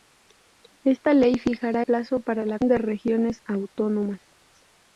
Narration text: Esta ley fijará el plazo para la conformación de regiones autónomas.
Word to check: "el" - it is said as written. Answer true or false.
false